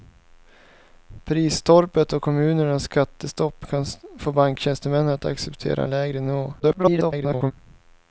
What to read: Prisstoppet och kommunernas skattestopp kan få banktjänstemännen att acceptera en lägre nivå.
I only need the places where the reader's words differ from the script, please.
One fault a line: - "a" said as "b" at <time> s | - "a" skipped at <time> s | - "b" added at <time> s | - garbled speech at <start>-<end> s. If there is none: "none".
- garbled speech at 6.6-7.5 s